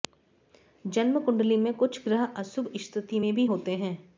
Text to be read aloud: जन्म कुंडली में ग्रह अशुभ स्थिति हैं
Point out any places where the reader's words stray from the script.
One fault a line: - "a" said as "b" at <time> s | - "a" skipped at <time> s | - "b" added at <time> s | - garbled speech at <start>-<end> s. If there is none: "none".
- "कुछ" added at 1.7 s
- "में भी होते" added at 3.2 s